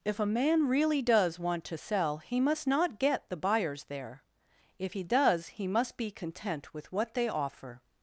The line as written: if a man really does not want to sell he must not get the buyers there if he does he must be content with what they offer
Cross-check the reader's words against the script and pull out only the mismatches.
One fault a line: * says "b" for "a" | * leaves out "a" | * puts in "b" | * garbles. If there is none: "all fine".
* leaves out "not"